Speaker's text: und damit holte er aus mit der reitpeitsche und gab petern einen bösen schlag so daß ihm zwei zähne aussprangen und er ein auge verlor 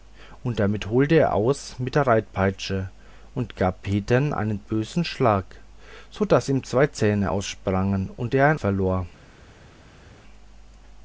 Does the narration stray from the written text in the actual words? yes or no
yes